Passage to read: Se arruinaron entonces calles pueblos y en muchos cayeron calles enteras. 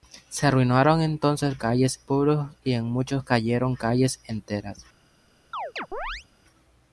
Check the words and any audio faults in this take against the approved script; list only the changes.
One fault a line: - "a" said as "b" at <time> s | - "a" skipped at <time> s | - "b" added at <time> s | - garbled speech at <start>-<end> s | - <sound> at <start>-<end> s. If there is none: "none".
- chirp at 5.5-6.3 s